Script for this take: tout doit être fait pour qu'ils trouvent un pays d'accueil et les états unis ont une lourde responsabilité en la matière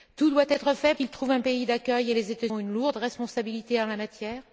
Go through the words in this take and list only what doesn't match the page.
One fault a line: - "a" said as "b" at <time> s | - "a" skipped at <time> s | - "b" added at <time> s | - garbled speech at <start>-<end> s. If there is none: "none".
- "pour" skipped at 0.9 s
- "unis" skipped at 2.5 s